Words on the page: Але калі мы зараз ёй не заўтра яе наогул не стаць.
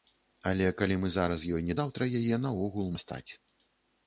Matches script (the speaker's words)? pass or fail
pass